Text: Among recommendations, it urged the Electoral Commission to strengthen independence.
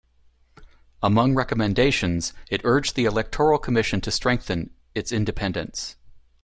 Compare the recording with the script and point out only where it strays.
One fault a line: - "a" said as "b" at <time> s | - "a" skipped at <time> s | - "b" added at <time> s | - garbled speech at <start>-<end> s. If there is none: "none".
- "its" added at 5.0 s